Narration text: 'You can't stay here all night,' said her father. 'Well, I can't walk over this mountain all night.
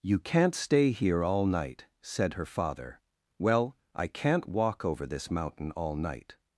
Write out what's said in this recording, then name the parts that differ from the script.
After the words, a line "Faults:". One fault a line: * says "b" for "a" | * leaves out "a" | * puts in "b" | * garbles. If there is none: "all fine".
'You can't stay here all night,' said her father. 'Well, I can't walk over this mountain all night.
Faults:
all fine